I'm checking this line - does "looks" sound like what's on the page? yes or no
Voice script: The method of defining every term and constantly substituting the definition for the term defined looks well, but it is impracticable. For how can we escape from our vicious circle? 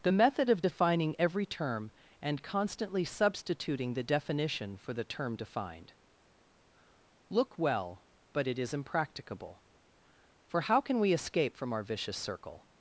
no